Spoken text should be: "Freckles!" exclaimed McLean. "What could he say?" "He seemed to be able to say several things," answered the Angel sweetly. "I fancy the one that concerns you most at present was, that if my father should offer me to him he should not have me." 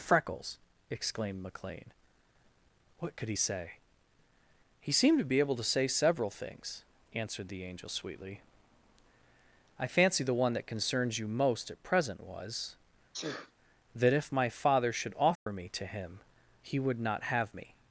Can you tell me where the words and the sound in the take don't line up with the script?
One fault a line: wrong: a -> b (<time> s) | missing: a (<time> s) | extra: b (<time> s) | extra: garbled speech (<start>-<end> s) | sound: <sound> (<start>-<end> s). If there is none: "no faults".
sound: sneeze (13.1-13.5 s)
sound: dropout (15.4-15.5 s)
wrong: should -> would (16.8 s)